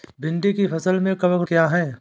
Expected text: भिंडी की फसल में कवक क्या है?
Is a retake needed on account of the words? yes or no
no